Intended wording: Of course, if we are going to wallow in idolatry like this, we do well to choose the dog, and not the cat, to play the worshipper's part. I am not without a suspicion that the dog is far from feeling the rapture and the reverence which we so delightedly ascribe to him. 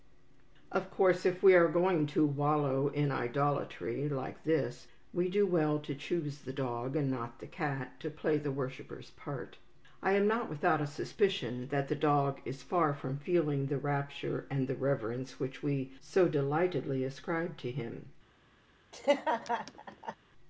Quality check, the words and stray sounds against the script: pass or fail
fail